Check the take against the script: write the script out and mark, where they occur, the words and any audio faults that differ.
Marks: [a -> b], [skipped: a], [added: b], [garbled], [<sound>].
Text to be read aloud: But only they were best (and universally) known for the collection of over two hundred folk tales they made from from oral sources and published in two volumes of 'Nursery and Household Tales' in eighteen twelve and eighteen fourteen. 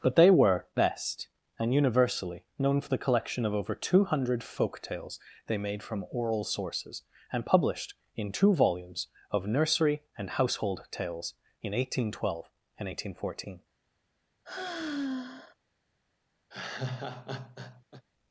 But [skipped: only] they were best (and universally) known for the collection of over two hundred folk tales they made from [skipped: from] oral sources and published in two volumes of 'Nursery and Household Tales' in eighteen twelve and eighteen fourteen. [sigh] [laugh]